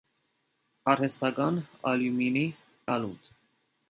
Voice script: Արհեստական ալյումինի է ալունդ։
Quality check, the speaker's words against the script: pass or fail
pass